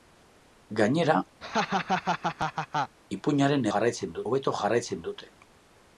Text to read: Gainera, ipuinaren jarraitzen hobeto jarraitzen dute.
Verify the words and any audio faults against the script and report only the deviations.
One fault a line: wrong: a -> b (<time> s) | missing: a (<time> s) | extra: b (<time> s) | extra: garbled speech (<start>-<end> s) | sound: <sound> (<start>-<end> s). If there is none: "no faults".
sound: laugh (1.4-3.0 s)